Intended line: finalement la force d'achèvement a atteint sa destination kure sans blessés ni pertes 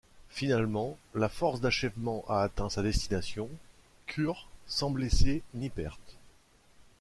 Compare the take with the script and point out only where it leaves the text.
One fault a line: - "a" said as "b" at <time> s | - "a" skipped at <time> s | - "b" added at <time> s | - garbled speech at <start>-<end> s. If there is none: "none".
none